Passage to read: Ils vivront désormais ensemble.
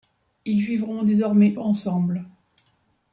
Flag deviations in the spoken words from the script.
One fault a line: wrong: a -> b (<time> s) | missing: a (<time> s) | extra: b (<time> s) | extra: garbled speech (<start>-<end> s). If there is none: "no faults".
no faults